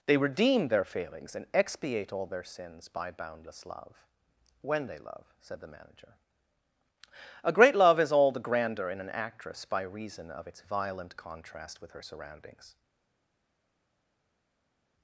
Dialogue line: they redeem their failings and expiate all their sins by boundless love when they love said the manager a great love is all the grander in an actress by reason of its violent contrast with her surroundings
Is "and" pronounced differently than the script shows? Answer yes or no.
no